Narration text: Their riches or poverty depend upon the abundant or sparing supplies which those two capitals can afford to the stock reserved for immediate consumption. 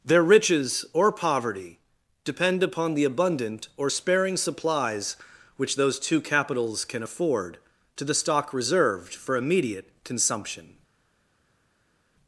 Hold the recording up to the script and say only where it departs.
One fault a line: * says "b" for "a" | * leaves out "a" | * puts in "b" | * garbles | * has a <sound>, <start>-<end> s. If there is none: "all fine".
all fine